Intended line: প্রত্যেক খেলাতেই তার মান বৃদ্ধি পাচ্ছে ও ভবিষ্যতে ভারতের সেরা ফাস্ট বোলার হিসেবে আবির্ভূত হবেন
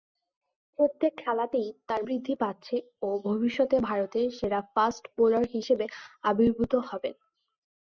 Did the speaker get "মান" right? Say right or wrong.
wrong